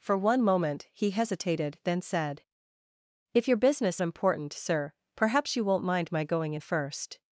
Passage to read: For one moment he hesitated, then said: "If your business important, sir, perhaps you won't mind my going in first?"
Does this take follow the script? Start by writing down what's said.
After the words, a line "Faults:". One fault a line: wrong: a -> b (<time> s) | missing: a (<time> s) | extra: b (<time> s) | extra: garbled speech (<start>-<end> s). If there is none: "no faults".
For one moment he hesitated, then said: "If your business important, sir, perhaps you won't mind my going in first?"
Faults:
no faults